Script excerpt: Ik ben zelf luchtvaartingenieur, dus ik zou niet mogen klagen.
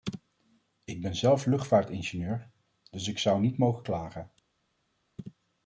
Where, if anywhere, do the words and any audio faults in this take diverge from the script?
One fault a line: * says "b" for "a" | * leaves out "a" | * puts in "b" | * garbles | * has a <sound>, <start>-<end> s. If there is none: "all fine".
all fine